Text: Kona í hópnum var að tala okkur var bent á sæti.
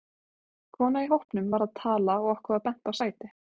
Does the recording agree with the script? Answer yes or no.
no